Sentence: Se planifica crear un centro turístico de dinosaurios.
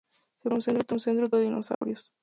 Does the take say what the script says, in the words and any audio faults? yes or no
no